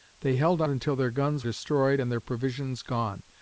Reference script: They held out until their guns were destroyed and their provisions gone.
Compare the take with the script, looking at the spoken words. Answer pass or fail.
fail